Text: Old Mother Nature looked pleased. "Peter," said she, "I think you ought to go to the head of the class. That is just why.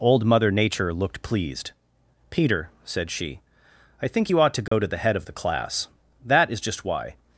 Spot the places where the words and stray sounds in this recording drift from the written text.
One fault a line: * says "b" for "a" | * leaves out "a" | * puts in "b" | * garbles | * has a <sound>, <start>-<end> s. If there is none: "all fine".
* has a dropout, 4.7-4.7 s